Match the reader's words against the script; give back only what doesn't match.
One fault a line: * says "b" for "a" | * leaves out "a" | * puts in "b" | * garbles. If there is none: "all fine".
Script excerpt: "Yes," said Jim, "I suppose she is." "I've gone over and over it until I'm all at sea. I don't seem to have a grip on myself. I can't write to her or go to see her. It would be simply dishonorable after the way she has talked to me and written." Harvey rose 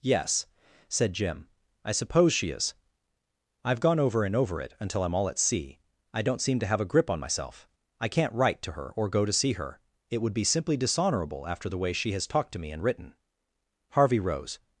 all fine